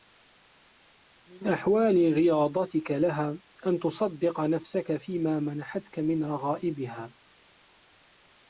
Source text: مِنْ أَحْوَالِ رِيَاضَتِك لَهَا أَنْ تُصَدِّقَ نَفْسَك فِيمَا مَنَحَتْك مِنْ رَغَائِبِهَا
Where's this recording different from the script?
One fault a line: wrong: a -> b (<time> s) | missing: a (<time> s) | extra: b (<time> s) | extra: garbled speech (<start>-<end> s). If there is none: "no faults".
no faults